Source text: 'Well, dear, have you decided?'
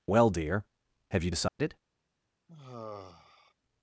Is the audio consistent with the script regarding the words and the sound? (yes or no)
no